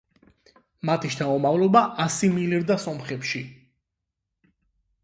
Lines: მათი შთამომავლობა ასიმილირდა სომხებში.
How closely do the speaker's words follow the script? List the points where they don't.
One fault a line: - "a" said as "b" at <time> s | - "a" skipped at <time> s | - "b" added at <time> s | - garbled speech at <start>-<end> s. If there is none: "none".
none